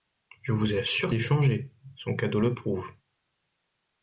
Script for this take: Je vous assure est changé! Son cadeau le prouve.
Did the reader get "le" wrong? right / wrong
right